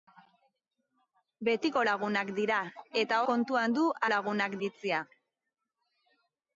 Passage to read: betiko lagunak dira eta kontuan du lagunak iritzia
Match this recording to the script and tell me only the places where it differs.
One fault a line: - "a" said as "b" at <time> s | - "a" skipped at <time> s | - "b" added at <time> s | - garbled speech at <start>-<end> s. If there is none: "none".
none